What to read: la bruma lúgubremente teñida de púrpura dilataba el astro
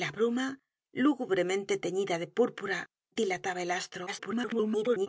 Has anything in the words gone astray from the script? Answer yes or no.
yes